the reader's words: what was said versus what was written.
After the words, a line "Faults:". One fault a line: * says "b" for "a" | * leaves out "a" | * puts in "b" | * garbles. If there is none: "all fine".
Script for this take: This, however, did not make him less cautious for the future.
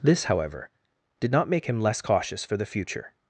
This, however, did not make him less cautious for the future.
Faults:
all fine